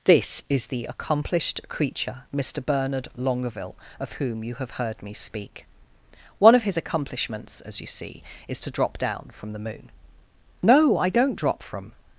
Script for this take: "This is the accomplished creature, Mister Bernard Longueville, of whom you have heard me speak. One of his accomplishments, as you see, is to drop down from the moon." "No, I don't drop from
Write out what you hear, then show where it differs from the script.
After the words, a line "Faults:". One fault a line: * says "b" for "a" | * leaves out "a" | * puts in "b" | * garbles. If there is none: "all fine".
"This is the accomplished creature, Mister Bernard Longueville, of whom you have heard me speak. One of his accomplishments, as you see, is to drop down from the moon." "No, I don't drop from
Faults:
all fine